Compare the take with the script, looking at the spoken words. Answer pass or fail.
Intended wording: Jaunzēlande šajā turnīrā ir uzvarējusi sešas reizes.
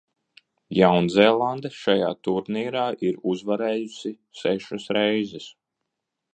pass